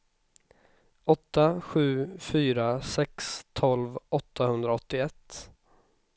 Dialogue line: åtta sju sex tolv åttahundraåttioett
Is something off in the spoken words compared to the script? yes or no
yes